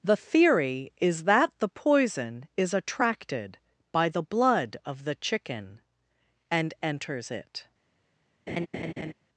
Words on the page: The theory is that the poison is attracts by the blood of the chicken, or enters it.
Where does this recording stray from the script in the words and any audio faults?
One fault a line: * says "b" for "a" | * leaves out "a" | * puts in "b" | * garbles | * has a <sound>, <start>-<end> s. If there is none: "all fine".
* says "attracted" for "attracts"
* says "and" for "or"
* has a laugh, 8.5-9.1 s